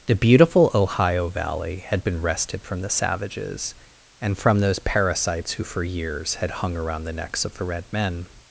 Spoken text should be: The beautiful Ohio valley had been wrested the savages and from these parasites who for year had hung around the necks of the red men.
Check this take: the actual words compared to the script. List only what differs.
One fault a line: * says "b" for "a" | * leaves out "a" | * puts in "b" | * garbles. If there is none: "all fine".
* puts in "from"
* says "those" for "these"
* says "years" for "year"